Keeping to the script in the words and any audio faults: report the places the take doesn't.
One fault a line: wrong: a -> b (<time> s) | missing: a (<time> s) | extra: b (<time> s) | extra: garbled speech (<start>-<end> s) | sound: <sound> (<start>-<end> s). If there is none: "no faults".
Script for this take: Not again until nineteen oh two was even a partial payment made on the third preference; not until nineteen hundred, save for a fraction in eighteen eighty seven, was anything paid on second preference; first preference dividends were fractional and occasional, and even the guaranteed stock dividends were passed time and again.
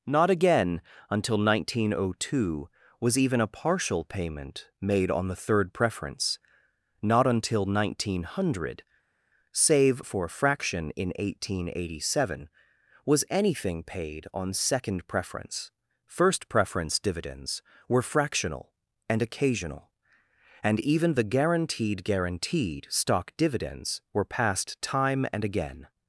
extra: guaranteed (22.0 s)